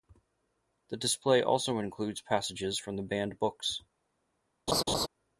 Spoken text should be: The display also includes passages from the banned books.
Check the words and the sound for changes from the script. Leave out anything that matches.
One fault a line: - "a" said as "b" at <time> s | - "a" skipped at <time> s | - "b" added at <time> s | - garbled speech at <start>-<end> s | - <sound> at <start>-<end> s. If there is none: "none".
- laugh at 4.7-5.1 s